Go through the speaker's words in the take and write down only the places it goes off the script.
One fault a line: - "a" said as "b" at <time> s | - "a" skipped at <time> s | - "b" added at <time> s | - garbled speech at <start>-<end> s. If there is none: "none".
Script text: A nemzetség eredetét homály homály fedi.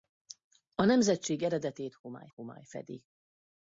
none